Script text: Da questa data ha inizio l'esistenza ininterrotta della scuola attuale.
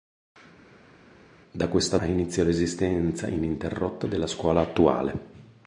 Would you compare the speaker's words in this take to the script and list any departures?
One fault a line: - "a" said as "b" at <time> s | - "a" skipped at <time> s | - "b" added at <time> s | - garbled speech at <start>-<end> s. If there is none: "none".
- "data" skipped at 2.0 s